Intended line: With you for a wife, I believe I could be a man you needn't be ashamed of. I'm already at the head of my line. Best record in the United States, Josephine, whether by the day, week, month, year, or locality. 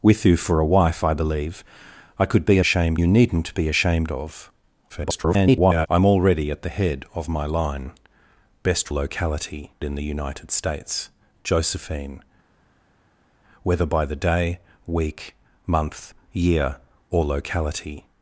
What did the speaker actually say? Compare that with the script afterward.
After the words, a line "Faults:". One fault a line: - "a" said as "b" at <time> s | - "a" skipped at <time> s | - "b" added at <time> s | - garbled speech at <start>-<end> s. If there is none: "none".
With you for a wife, I believe I could be a ashamed you needn't be ashamed of. [garbled] I'm already at the head of my line. Best locality in the United States, Josephine, whether by the day, week, month, year, or locality.
Faults:
- "man" said as "ashamed" at 2.6 s
- garbled speech at 4.9-5.9 s
- "record" said as "locality" at 8.9 s